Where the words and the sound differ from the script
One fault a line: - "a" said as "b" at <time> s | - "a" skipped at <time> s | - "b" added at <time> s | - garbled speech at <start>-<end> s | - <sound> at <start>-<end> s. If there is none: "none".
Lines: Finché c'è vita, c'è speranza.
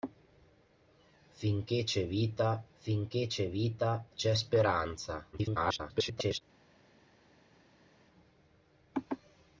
- "finché c'è vita" added at 2.7 s
- garbled speech at 5.3-6.4 s